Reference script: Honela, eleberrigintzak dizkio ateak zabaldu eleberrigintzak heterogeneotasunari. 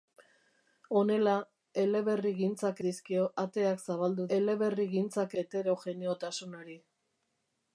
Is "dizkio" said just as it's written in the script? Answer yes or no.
yes